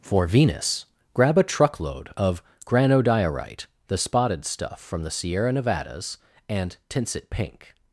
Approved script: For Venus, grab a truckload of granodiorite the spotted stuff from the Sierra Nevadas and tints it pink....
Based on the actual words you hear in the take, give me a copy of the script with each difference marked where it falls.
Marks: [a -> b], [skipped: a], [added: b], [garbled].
For Venus, grab a truckload of granodiorite the spotted stuff from the Sierra Nevadas and tints it pink....